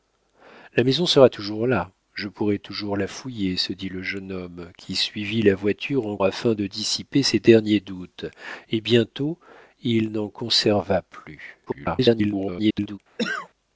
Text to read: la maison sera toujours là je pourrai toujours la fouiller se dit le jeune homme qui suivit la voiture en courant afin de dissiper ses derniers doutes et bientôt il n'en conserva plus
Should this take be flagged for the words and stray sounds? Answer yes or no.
yes